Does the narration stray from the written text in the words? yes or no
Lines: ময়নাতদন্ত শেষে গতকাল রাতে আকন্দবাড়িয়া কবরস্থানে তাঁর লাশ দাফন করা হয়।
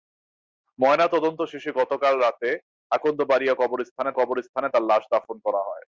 yes